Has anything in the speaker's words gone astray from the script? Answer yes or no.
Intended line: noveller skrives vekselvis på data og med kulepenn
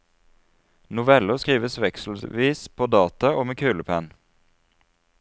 no